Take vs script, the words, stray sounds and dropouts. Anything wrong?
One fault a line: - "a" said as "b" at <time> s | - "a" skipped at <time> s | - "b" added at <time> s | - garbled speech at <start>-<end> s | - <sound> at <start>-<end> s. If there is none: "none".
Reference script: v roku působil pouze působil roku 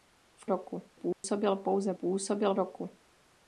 - dropout at 1.1-1.2 s